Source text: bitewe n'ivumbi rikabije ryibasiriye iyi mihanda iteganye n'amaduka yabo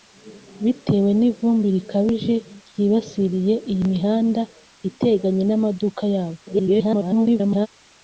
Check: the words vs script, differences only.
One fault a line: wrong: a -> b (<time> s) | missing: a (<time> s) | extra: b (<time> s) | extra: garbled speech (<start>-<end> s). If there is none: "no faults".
extra: garbled speech (6.5-7.7 s)